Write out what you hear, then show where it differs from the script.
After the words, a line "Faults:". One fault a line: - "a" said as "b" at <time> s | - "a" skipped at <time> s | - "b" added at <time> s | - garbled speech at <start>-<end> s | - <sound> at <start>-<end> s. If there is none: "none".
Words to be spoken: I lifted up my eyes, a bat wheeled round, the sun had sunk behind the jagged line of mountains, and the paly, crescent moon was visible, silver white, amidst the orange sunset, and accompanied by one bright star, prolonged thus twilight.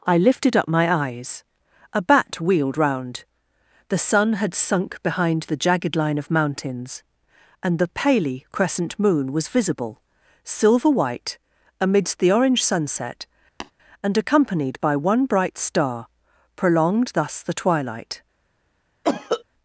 I lifted up my eyes, a bat wheeled round, the sun had sunk behind the jagged line of mountains, and the paly, crescent moon was visible, silver white, amidst the orange sunset, and accompanied by one bright star, prolonged thus the twilight.
Faults:
- tap at 13.6-13.7 s
- "the" added at 17.4 s
- cough at 19.0-19.4 s